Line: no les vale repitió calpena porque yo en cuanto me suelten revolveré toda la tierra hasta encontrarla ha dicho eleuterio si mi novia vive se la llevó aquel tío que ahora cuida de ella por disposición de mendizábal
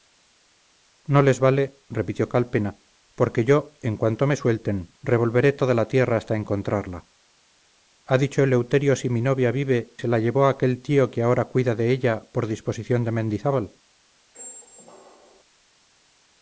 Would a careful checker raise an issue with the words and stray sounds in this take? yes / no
yes